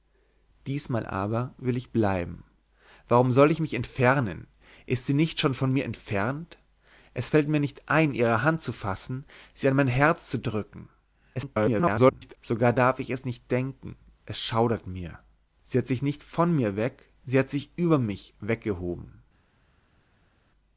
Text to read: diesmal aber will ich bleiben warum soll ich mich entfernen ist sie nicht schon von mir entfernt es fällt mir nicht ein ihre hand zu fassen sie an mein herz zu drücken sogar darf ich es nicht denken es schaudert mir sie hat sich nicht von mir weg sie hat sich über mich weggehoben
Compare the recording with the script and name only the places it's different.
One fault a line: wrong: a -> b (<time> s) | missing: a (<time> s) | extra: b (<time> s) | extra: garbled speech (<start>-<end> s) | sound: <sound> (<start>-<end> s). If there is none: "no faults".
extra: garbled speech (11.3-12.4 s)